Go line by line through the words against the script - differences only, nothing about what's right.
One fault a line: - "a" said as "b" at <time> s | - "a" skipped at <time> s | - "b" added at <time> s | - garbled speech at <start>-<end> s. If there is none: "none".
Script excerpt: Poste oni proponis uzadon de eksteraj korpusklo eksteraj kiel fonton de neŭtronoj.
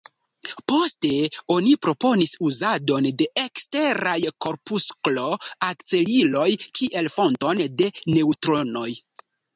- "eksteraj" said as "akceliloj" at 5.7 s